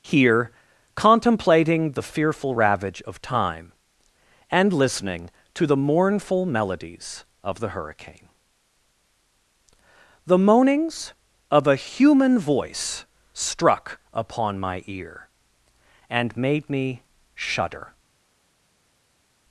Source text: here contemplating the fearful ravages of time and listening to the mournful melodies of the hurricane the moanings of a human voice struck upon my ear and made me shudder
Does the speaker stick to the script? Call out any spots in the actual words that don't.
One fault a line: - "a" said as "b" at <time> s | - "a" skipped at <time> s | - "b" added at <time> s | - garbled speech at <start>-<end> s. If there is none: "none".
- "ravages" said as "ravage" at 2.5 s